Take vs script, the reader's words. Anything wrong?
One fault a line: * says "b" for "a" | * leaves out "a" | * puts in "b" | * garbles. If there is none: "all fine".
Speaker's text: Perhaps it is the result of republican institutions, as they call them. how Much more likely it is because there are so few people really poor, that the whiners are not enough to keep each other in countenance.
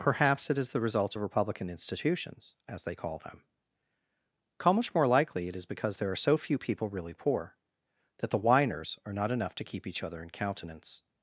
all fine